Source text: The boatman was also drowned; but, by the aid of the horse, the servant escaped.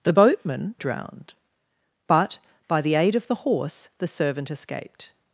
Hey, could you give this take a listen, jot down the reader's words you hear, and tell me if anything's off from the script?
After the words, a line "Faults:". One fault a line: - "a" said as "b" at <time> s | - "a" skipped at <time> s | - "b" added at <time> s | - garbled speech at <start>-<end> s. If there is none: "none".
The boatman drowned; but, by the aid of the horse, the servant escaped.
Faults:
- "was also" skipped at 0.7 s